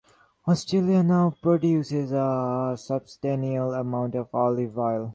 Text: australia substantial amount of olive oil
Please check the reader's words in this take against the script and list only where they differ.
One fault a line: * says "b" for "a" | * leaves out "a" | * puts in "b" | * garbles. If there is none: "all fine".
* puts in "now produces a"